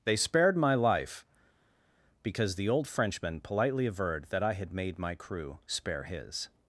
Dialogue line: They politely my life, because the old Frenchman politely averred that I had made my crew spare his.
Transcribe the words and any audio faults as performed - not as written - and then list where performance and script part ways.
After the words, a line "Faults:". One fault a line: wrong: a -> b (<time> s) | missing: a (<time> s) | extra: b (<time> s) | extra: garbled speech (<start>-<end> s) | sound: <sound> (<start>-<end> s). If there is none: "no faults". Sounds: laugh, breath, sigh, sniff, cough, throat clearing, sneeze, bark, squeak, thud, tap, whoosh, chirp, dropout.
They spared my life, because the old Frenchman politely averred that I had made my crew spare his.
Faults:
wrong: politely -> spared (0.1 s)